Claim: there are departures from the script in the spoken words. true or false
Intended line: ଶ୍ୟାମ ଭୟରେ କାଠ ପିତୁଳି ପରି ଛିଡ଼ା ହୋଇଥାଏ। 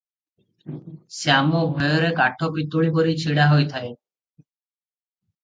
false